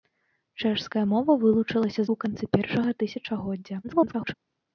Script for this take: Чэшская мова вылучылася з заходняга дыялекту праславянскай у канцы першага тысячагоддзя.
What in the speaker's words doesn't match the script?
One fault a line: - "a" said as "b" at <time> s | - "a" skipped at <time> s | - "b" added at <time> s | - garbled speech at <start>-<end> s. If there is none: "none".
- "заходняга дыялекту праславянскай" skipped at 2.0 s
- garbled speech at 3.8-4.3 s